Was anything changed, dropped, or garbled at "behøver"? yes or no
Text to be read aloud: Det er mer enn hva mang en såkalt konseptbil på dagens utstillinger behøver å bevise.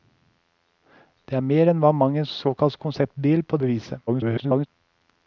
yes